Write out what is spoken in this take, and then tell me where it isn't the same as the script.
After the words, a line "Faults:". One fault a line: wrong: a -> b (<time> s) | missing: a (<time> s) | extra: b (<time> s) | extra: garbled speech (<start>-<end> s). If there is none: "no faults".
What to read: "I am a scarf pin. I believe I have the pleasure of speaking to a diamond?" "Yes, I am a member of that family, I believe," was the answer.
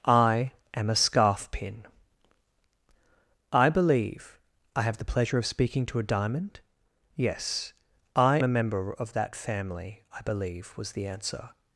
"I am a scarf pin. I believe I have the pleasure of speaking to a diamond?" "Yes, I a member of that family, I believe," was the answer.
Faults:
missing: am (8.4 s)